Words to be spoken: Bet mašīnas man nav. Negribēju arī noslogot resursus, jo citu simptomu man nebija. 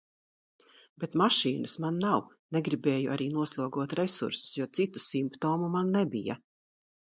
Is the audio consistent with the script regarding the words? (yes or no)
yes